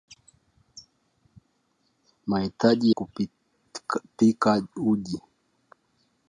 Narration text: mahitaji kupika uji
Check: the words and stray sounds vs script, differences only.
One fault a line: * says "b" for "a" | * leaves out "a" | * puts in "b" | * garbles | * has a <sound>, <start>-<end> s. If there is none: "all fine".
all fine